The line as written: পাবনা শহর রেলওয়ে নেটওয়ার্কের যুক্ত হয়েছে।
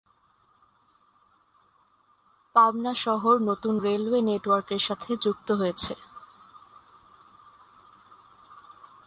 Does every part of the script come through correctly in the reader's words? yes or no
no